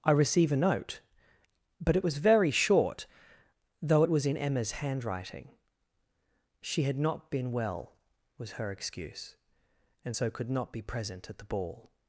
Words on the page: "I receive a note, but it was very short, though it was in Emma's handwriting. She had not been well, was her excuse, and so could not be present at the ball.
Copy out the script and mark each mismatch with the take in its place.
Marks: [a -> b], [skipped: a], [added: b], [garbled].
"I receive a note, but it was very short, though it was in Emma's handwriting. She had not been well, was her excuse, and so could not be present at the ball.